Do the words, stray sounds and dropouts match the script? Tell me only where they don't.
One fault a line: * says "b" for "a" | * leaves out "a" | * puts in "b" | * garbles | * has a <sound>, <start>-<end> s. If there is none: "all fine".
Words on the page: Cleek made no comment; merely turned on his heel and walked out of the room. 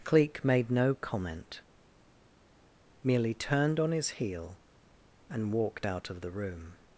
all fine